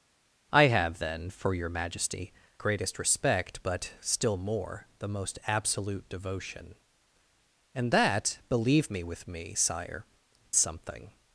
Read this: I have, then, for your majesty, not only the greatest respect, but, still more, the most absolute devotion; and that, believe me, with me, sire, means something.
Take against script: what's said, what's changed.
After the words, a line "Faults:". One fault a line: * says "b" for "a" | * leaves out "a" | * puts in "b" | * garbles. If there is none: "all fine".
I have, then, for your majesty, greatest respect, but, still more, the most absolute devotion; and that, believe me, with me, sire, something.
Faults:
* leaves out "not only the"
* leaves out "means"